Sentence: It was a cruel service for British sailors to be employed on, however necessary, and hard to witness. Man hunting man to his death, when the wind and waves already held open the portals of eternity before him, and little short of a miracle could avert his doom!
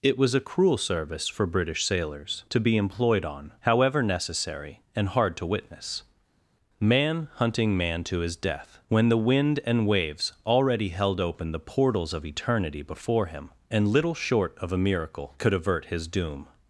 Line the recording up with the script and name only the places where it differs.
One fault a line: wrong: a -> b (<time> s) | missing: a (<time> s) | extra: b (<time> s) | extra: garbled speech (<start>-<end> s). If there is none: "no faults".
no faults